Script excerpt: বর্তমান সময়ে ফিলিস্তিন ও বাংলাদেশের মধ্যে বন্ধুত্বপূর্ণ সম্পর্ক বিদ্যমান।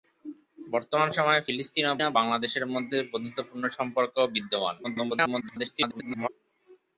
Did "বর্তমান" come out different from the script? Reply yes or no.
no